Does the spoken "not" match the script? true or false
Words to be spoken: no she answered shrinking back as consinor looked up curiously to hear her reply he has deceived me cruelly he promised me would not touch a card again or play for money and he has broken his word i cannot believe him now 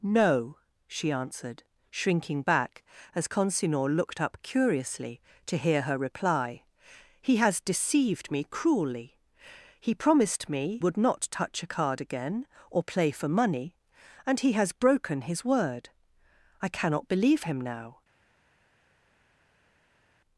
true